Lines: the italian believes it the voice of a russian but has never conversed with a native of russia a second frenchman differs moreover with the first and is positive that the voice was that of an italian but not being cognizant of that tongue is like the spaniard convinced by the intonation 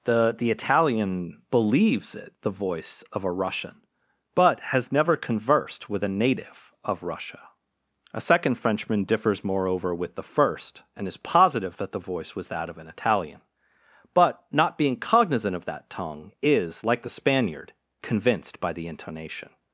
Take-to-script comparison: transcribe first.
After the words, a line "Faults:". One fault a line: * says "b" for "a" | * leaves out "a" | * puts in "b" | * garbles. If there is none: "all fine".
the the italian believes it the voice of a russian but has never conversed with a native of russia a second frenchman differs moreover with the first and is positive that the voice was that of an italian but not being cognizant of that tongue is like the spaniard convinced by the intonation
Faults:
* puts in "the"